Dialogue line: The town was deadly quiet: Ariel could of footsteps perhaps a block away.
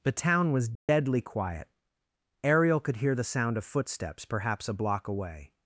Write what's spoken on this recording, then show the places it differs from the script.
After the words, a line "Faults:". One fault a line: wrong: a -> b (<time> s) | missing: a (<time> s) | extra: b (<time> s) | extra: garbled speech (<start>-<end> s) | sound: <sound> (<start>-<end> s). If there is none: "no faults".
The town was deadly quiet: Ariel could hear the sound of footsteps perhaps a block away.
Faults:
sound: dropout (0.8-0.9 s)
extra: hear the sound (3.0 s)